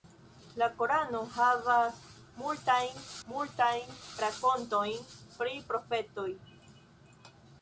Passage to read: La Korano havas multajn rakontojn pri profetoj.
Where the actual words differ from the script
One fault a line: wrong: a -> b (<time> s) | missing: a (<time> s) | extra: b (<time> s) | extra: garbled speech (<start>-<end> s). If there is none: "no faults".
extra: multajn (3.3 s)